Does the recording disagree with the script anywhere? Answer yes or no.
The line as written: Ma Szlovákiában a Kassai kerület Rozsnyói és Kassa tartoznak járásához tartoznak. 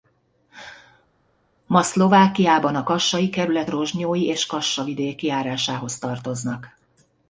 yes